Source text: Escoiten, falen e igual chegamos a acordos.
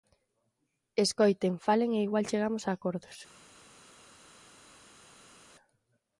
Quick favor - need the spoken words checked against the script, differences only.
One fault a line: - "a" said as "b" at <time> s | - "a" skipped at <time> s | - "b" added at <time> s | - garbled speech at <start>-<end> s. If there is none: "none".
none